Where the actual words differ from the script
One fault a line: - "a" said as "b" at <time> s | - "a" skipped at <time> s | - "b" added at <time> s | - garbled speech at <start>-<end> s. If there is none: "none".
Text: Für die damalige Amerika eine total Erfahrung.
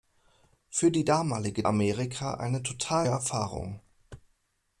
none